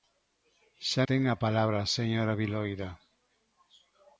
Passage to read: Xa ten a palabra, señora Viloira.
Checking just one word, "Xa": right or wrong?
right